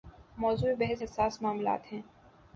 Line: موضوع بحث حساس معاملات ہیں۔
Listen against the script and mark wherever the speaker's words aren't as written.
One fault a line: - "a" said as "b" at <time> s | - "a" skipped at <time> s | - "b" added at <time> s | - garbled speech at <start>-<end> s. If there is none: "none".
none